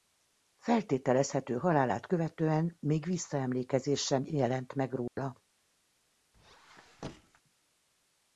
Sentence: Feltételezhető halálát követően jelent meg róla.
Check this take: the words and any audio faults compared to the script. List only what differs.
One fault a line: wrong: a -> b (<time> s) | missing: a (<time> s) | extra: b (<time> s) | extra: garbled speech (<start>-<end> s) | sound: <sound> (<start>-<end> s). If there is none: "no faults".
extra: még visszaemlékezés sem (2.8 s)
sound: dropout (5.1-5.2 s)
sound: squeak (6.3-7.4 s)